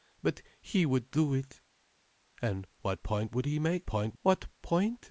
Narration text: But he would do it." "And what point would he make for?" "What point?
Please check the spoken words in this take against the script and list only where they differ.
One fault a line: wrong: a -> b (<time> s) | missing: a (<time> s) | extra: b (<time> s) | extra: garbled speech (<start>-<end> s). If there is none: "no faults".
wrong: for -> point (3.9 s)